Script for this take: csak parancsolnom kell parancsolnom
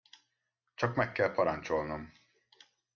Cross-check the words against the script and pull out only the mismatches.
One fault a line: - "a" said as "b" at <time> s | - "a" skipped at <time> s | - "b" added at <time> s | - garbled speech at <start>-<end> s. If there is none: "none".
- "parancsolnom" said as "meg" at 0.9 s